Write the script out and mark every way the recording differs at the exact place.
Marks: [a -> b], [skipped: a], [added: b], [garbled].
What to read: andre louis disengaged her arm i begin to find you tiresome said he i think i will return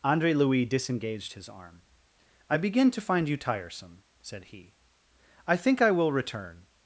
andre louis disengaged [her -> his] arm i begin to find you tiresome said he i think i will return